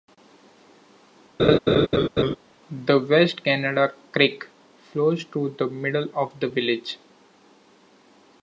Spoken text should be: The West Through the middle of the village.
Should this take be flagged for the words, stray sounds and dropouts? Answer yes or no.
yes